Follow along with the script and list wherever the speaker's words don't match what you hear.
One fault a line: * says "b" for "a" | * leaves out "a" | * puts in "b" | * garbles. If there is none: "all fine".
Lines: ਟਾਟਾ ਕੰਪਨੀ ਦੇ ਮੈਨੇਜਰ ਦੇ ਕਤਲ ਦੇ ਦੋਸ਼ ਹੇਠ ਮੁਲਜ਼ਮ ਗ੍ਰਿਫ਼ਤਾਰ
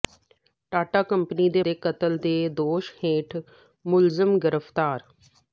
* leaves out "ਮੈਨੇਜਰ"